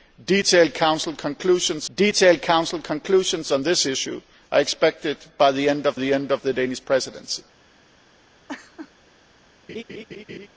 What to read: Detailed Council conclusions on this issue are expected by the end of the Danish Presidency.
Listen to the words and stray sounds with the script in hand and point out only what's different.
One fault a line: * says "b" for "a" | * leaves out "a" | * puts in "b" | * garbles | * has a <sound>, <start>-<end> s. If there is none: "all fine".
* puts in "detailed Council conclusions"
* puts in "end of the"
* has a laugh, 8.5-8.9 s
* has a laugh, 9.7-10.5 s